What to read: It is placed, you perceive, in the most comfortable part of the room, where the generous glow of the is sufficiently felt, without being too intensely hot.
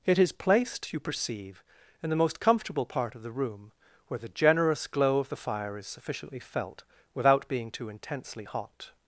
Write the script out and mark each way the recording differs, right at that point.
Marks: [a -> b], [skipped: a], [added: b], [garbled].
It is placed, you perceive, in the most comfortable part of the room, where the generous glow of the [added: fire] is sufficiently felt, without being too intensely hot.